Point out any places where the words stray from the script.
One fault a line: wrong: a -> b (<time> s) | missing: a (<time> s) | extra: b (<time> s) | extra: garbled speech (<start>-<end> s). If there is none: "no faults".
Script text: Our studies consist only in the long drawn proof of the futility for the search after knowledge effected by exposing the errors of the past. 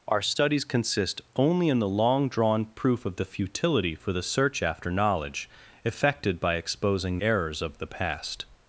missing: the (7.2 s)